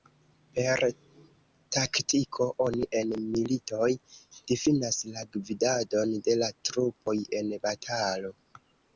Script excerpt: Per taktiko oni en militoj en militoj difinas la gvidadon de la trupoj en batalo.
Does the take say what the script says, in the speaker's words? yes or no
no